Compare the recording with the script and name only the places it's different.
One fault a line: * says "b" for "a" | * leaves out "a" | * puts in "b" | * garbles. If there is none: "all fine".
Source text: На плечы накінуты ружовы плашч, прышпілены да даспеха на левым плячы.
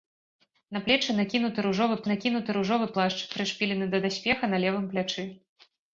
* puts in "накінуты ружовы"